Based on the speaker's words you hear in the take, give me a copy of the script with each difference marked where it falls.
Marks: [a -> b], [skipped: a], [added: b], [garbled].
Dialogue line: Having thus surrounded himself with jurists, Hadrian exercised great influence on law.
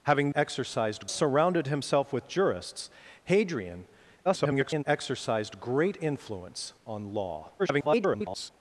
Having [thus -> exercised] surrounded himself with jurists, Hadrian [garbled] exercised great influence on law. [garbled]